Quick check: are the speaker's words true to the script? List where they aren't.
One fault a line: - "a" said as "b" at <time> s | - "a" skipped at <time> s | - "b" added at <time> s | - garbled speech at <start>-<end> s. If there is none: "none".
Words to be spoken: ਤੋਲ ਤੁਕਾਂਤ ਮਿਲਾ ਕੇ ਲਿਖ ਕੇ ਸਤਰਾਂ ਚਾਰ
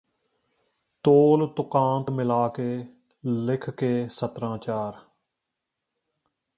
none